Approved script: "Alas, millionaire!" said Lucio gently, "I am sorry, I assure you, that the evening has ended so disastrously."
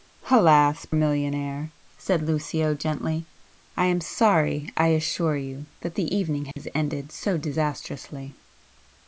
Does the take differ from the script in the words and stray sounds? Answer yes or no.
yes